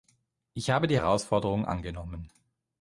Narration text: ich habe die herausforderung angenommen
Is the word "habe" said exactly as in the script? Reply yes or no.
yes